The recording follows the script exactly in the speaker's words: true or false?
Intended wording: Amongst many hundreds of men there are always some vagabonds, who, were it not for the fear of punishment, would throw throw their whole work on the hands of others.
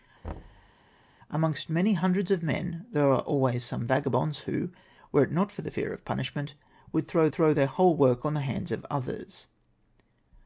true